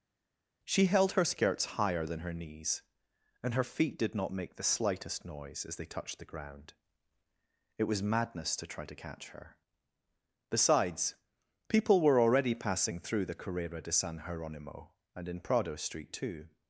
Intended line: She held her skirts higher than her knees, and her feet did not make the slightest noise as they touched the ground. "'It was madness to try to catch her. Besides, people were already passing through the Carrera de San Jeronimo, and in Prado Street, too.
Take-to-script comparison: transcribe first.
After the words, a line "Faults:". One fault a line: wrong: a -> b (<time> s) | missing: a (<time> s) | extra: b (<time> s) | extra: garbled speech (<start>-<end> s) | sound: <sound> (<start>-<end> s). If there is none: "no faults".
She held her skirts higher than her knees, and her feet did not make the slightest noise as they touched the ground. "'It was madness to try to catch her. Besides, people were already passing through the Carrera de San Jeronimo, and in Prado Street, too.
Faults:
no faults